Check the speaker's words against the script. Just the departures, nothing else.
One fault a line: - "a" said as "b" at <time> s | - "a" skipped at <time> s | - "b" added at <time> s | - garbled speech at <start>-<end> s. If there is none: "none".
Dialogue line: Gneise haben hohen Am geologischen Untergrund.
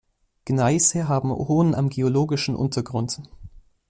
none